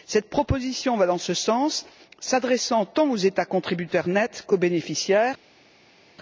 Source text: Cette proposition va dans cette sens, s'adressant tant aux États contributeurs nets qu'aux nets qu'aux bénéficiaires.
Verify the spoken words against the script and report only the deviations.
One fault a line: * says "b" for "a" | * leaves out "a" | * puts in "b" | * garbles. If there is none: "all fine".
* says "ce" for "cette"
* leaves out "nets qu'aux"